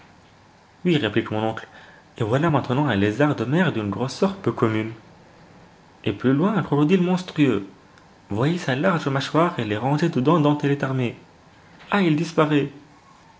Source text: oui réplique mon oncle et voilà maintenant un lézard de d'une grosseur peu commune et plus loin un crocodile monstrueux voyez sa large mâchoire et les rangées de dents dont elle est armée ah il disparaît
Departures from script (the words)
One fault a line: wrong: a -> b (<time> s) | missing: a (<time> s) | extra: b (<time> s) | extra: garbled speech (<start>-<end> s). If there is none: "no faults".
extra: mer (3.4 s)